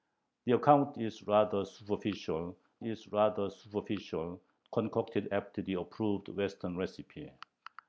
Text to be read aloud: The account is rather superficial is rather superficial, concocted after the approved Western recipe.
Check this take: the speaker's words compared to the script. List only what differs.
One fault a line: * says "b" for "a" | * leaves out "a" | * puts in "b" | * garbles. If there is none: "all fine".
all fine